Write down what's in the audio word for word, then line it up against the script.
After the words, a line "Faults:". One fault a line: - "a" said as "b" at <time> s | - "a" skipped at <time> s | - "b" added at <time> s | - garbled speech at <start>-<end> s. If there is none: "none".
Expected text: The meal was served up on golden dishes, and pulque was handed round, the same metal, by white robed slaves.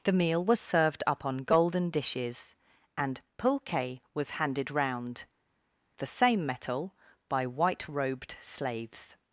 The meal was served up on golden dishes, and pulque was handed round, the same metal, by white robed slaves.
Faults:
none